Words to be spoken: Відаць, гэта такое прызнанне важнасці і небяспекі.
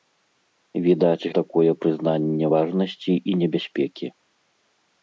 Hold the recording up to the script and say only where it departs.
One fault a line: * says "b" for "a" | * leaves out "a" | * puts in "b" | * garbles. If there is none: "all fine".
* leaves out "гэта"